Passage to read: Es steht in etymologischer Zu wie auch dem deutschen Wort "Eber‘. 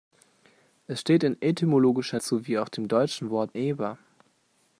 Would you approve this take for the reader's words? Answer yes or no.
yes